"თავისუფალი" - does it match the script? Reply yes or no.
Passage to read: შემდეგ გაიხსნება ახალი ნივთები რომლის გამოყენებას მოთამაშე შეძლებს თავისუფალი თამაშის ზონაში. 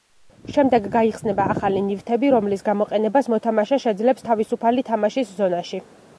yes